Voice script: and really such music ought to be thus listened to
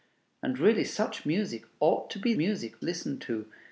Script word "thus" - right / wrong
wrong